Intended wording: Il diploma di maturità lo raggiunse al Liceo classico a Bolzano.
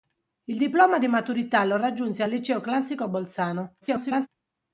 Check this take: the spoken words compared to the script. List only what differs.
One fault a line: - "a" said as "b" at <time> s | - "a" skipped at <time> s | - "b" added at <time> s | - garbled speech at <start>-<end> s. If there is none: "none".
- garbled speech at 3.8-4.3 s